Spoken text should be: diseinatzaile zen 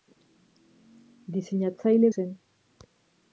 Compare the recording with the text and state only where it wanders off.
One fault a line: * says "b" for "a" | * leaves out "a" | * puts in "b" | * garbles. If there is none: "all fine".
all fine